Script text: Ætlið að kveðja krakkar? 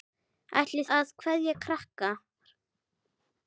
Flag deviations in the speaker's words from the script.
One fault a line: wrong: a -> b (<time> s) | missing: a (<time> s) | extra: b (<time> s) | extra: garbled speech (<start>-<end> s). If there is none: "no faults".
no faults